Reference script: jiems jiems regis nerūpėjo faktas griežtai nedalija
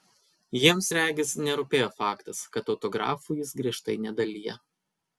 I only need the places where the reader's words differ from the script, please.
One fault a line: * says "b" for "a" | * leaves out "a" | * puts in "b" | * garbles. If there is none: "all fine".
* leaves out "jiems"
* puts in "kad autografų jis"